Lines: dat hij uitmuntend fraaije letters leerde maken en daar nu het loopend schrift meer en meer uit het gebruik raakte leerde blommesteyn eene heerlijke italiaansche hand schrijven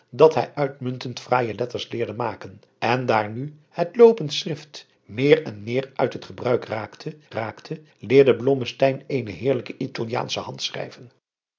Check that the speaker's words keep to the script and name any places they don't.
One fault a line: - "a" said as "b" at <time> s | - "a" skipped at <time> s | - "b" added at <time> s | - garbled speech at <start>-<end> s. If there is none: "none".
- "raakte" added at 7.3 s